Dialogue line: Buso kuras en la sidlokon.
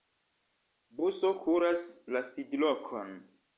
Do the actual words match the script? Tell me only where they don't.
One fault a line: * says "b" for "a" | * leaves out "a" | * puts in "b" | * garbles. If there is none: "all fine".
* leaves out "en"